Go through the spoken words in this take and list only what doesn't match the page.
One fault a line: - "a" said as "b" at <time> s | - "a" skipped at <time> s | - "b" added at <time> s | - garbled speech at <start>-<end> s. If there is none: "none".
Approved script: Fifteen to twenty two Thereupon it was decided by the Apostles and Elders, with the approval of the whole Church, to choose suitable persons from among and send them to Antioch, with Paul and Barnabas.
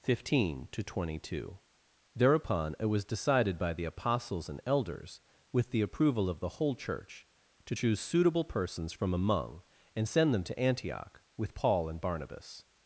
none